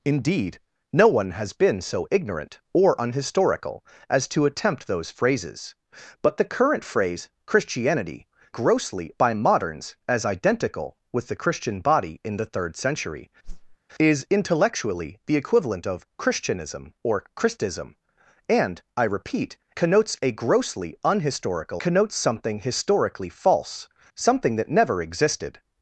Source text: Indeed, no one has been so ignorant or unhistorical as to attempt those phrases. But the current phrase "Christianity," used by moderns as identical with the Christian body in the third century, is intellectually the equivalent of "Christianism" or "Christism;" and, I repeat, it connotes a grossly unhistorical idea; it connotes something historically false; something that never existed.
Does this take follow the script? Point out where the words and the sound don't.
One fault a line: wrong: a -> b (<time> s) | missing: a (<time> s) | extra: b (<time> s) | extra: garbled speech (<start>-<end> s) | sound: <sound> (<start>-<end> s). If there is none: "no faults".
wrong: used -> grossly (8.5 s)
sound: whoosh (13.4-13.8 s)
missing: it (19.6 s)
missing: idea it (21.8 s)